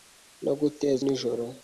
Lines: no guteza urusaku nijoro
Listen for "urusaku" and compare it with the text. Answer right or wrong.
wrong